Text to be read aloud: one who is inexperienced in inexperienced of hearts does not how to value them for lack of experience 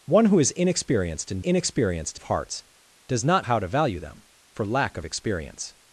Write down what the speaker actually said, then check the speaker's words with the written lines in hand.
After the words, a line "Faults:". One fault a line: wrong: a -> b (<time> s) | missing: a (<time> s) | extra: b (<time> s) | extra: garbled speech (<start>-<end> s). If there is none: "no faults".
one who is inexperienced in inexperienced of hearts does not how to value them for lack of experience
Faults:
no faults